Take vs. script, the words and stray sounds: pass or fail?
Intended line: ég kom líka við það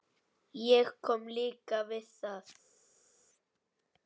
pass